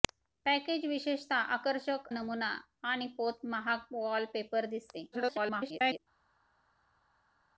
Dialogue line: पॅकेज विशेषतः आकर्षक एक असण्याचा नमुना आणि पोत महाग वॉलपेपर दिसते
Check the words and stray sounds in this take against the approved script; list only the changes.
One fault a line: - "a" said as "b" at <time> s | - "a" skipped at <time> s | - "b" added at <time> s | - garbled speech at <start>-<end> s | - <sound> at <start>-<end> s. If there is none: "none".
- "एक असण्याचा" skipped at 2.1 s
- garbled speech at 5.1-6.0 s